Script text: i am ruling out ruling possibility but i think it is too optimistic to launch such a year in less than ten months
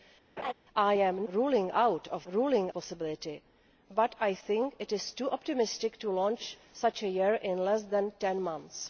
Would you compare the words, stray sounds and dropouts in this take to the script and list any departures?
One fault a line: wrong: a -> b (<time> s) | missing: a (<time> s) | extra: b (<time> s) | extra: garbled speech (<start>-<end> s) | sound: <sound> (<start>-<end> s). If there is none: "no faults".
sound: laugh (0.4-0.5 s)